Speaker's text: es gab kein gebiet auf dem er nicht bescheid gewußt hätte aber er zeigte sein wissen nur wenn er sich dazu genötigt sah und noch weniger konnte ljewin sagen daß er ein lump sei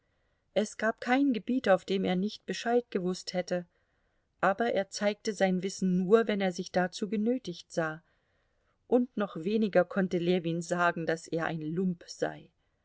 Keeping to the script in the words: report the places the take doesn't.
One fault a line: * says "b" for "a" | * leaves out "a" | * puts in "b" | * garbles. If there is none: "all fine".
all fine